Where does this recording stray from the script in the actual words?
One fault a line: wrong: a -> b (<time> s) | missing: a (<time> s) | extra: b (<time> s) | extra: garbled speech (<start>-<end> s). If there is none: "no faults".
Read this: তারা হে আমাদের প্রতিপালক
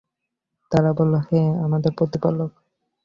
extra: বলল (1.0 s)